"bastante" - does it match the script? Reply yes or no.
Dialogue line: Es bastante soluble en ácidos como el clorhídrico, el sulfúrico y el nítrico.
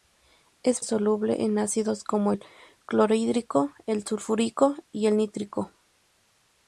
no